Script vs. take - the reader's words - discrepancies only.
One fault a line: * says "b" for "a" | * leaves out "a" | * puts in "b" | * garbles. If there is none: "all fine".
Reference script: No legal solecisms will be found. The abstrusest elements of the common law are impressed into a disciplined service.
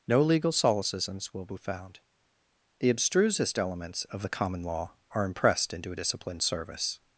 all fine